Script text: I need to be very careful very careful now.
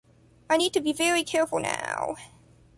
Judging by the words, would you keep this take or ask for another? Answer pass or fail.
fail